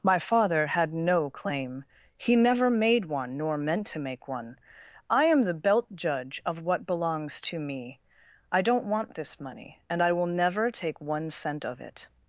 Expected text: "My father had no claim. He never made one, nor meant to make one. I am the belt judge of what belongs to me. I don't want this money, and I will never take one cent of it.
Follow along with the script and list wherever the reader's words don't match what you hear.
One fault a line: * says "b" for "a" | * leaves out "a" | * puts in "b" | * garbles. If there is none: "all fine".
all fine